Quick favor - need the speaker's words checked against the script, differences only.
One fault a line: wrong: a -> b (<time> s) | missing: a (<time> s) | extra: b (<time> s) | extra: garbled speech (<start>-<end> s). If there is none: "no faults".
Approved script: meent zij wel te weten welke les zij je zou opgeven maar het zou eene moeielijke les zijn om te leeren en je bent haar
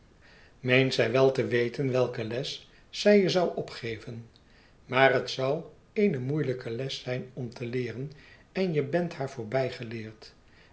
no faults